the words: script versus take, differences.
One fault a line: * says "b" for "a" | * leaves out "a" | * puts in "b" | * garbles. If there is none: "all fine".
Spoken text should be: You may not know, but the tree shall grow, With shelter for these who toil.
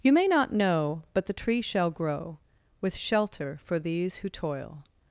all fine